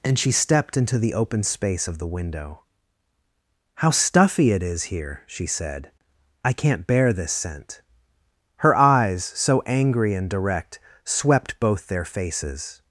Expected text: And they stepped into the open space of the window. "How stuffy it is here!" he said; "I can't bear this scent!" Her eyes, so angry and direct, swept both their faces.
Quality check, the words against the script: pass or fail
fail